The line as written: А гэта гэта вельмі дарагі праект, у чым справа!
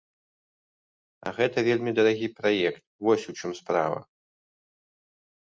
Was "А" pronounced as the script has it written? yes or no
yes